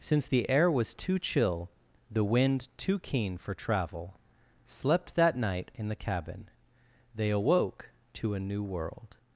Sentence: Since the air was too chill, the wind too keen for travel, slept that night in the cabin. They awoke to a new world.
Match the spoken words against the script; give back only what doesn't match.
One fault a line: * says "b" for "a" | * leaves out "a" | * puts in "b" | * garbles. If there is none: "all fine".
all fine